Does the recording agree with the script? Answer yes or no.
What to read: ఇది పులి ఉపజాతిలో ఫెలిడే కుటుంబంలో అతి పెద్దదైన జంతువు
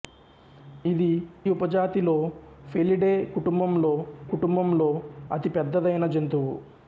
no